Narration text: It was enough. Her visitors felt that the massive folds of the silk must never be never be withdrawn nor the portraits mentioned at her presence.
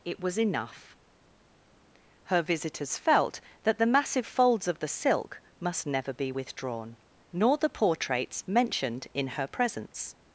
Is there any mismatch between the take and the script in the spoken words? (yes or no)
yes